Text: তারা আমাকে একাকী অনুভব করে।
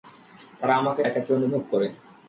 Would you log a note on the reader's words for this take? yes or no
no